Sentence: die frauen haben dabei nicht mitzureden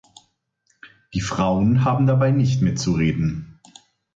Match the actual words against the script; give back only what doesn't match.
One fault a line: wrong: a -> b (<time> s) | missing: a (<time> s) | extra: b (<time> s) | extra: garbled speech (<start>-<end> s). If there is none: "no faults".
no faults